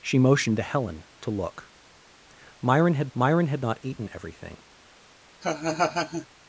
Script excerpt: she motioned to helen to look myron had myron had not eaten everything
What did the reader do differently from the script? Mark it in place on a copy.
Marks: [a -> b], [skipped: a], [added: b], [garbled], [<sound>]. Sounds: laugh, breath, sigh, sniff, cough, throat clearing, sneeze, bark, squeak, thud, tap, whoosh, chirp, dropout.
she motioned to helen to look myron had myron had not eaten everything [laugh]